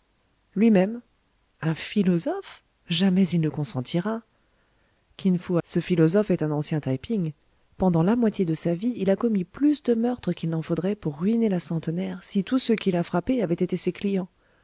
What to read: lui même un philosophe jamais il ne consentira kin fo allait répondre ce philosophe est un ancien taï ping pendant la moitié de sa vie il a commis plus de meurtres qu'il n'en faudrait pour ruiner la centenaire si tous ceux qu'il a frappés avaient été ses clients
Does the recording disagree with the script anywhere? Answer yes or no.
yes